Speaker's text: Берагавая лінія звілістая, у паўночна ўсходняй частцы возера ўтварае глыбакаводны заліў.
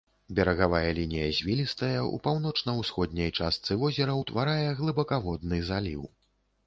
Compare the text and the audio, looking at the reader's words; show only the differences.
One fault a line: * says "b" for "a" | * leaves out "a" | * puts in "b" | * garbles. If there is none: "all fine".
all fine